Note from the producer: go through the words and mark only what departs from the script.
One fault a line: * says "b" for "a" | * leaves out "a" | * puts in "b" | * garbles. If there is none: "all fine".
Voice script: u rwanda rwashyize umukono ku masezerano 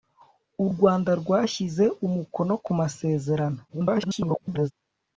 * garbles